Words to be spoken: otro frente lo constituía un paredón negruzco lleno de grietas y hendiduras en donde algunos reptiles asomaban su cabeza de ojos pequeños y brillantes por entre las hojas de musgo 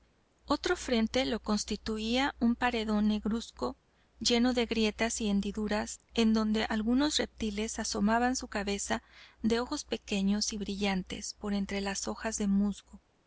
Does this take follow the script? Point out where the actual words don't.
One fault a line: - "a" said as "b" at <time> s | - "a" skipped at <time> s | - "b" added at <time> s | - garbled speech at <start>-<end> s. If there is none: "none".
none